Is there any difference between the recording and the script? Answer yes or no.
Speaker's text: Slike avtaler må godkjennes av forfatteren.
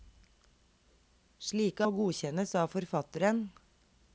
yes